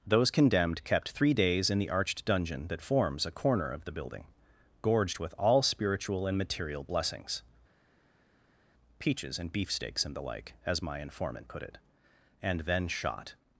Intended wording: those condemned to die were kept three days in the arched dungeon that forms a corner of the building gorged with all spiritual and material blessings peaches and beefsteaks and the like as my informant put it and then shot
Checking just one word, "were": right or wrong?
wrong